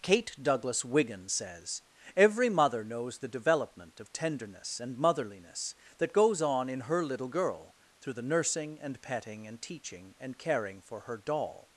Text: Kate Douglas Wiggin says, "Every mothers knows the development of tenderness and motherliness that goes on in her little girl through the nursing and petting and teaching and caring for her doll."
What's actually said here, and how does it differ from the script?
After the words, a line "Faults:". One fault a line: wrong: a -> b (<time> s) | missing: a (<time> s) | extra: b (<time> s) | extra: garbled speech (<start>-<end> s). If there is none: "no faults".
Kate Douglas Wiggin says, "Every mother knows the development of tenderness and motherliness that goes on in her little girl through the nursing and petting and teaching and caring for her doll."
Faults:
wrong: mothers -> mother (2.5 s)